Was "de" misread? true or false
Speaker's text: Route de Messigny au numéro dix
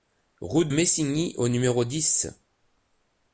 true